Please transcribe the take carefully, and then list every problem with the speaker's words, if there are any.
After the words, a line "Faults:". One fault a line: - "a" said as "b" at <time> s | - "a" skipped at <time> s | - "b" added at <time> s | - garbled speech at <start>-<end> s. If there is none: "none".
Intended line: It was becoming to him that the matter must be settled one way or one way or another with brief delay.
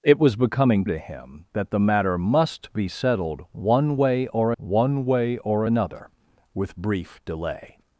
It was becoming to him that the matter must be settled one way or one way or another with brief delay.
Faults:
none